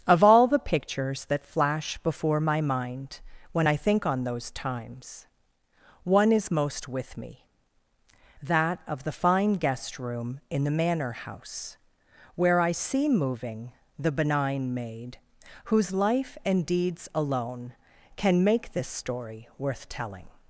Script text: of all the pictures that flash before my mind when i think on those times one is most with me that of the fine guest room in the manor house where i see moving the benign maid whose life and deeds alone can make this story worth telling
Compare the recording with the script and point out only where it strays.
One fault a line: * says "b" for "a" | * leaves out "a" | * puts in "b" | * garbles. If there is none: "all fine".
all fine